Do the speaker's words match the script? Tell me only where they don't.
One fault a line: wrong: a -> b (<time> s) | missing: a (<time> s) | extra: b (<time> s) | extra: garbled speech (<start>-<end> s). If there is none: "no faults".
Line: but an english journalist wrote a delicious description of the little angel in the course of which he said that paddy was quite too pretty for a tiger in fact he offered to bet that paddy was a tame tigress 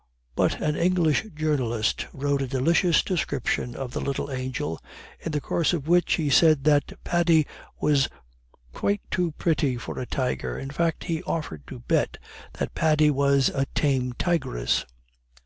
no faults